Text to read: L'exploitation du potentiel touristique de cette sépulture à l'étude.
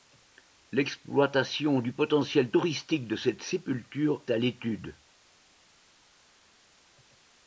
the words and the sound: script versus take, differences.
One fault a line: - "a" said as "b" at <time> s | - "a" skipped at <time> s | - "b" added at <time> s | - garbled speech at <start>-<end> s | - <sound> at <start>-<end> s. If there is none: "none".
none